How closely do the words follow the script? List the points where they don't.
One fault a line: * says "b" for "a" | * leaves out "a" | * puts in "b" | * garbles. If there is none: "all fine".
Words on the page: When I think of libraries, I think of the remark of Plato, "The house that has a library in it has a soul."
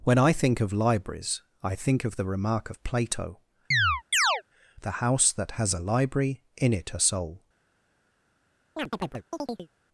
* leaves out "has"